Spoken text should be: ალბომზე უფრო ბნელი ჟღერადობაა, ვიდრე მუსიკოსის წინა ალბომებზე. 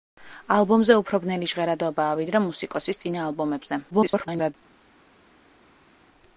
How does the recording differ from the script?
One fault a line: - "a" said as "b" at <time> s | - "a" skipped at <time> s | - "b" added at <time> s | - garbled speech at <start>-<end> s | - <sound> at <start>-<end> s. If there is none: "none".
- garbled speech at 3.9-4.5 s